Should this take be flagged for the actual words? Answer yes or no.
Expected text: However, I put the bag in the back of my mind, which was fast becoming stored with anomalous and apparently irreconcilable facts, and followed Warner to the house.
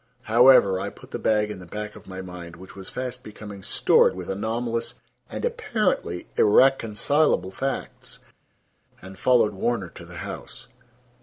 no